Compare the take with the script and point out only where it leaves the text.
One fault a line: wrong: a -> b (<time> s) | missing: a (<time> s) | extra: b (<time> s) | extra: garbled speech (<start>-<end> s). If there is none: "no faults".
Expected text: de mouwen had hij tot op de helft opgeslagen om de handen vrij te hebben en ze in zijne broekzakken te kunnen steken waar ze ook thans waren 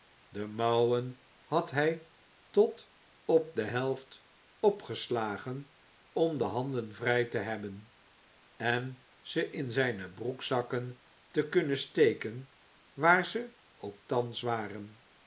no faults